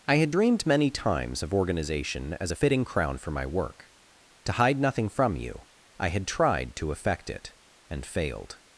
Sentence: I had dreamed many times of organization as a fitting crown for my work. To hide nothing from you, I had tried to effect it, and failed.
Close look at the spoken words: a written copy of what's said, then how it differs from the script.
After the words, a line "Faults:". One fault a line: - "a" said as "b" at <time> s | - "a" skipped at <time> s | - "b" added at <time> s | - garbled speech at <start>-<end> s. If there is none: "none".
I had dreamed many times of organization as a fitting crown for my work. To hide nothing from you, I had tried to effect it, and failed.
Faults:
none